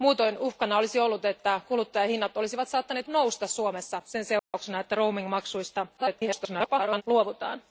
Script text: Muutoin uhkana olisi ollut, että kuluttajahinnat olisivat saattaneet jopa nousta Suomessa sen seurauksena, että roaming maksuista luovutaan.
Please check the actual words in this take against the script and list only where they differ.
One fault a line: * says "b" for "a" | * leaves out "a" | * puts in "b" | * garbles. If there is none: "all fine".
* leaves out "jopa"
* garbles